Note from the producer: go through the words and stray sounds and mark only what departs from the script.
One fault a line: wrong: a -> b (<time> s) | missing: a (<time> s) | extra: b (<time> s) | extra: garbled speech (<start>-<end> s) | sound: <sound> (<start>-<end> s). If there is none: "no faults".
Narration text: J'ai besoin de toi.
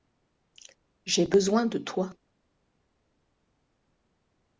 no faults